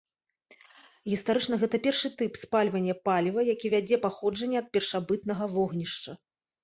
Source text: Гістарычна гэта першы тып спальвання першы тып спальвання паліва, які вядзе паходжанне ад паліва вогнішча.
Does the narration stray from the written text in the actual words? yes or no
yes